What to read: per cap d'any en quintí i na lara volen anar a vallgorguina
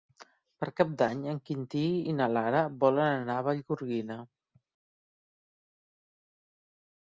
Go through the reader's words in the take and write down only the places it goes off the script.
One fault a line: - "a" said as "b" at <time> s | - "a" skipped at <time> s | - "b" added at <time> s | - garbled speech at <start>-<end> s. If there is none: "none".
none